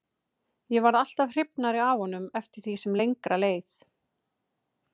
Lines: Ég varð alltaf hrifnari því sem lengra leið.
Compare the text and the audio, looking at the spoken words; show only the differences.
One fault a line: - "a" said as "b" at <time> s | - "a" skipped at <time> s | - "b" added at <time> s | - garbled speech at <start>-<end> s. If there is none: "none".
- "af honum eftir" added at 1.9 s